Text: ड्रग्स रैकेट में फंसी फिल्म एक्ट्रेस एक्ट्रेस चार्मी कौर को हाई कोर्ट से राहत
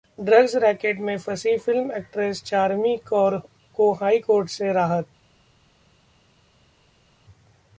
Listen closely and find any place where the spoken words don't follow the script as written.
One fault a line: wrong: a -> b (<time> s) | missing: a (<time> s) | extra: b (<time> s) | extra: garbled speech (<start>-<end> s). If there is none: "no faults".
missing: एक्ट्रेस (2.4 s)